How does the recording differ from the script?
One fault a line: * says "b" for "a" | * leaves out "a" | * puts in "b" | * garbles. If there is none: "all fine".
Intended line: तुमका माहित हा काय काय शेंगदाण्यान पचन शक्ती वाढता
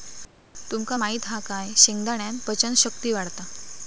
* leaves out "काय"